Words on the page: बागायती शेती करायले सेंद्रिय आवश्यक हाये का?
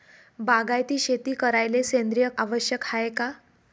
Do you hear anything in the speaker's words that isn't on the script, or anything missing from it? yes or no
no